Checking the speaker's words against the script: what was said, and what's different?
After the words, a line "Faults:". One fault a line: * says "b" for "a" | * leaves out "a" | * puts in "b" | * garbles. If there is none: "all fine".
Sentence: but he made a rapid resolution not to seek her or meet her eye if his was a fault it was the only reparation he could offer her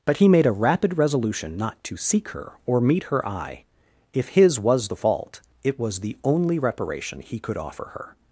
but he made a rapid resolution not to seek her or meet her eye if his was the fault it was the only reparation he could offer her
Faults:
* says "the" for "a"